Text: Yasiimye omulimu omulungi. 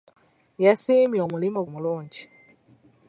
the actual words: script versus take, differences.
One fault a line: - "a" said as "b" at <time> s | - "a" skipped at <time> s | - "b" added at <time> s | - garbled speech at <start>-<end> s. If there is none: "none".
none